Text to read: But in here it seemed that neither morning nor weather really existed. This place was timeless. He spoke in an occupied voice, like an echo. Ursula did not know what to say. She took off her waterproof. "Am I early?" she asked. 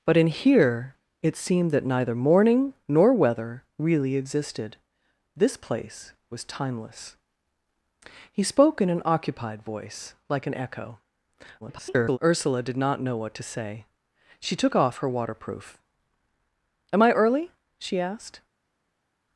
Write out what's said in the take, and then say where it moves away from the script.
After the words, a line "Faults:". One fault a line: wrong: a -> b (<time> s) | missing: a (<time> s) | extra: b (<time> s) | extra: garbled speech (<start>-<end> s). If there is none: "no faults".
But in here it seemed that neither morning nor weather really existed. This place was timeless. He spoke in an occupied voice, like an echo. [garbled] Ursula did not know what to say. She took off her waterproof. "Am I early?" she asked.
Faults:
extra: garbled speech (11.6-12.2 s)